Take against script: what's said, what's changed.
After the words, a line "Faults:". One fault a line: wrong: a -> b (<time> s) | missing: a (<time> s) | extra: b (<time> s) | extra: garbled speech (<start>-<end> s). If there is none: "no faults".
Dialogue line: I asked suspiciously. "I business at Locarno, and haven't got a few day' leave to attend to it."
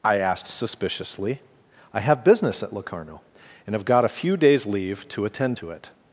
I asked suspiciously. "I have business at Locarno, and have got a few days' leave to attend to it."
Faults:
extra: have (2.0 s)
wrong: haven't -> have (3.8 s)
wrong: day -> days (4.3 s)